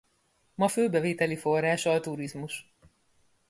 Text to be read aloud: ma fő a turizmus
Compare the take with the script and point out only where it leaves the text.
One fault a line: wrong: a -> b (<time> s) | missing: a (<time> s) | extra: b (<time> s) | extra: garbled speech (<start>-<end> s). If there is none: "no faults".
extra: bevételi forrása (0.9 s)